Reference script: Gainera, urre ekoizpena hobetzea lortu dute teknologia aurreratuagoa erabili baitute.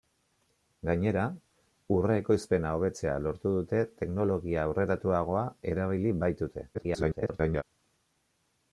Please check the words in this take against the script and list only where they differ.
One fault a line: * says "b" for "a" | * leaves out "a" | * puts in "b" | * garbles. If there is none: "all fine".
* garbles